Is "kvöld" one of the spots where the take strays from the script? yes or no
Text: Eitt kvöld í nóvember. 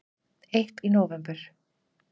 yes